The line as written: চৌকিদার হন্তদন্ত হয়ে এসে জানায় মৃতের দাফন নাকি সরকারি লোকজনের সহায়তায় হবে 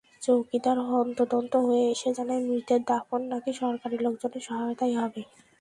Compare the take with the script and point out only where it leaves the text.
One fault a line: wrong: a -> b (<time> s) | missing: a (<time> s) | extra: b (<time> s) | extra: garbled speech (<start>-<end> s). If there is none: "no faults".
no faults